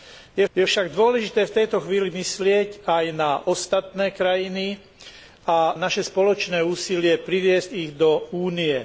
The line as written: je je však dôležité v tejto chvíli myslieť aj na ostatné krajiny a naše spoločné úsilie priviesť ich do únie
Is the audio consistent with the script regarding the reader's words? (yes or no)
yes